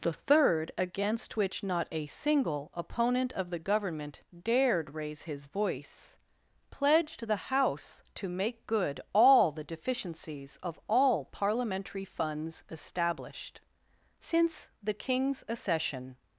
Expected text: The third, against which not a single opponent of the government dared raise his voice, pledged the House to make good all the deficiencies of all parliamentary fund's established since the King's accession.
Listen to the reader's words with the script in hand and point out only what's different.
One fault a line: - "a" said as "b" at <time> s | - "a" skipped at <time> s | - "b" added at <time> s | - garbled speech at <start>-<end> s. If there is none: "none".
none